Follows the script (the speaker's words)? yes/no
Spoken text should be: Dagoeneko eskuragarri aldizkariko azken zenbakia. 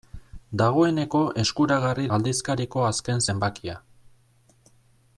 yes